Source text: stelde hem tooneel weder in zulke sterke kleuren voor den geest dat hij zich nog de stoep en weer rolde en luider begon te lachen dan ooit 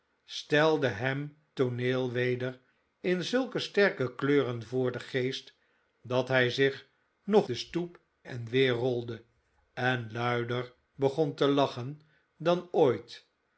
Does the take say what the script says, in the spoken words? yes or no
yes